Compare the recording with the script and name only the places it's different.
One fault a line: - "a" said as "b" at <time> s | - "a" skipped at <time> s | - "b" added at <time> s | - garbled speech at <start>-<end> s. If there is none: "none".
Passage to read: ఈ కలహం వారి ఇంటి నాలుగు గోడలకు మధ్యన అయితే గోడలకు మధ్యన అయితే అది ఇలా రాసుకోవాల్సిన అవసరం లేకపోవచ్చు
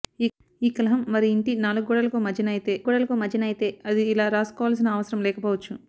none